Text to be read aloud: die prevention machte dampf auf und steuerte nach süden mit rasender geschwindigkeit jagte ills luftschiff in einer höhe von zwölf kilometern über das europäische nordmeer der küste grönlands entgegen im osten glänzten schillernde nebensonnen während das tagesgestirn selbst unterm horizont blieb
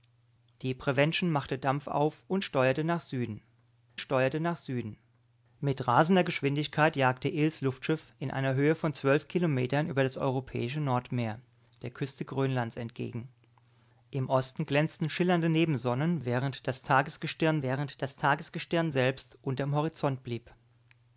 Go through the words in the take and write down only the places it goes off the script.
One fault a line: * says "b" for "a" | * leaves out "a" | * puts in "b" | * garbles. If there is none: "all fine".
* puts in "steuerte nach süden"
* puts in "während das tagesgestirn"